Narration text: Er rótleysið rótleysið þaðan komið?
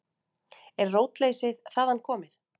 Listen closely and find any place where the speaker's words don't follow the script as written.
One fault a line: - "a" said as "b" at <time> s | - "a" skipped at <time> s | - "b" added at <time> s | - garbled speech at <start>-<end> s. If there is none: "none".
- "rótleysið" skipped at 1.6 s